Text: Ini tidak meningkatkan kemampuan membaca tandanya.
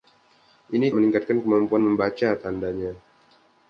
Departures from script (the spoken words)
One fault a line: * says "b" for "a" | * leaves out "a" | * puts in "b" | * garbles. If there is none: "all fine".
* leaves out "tidak"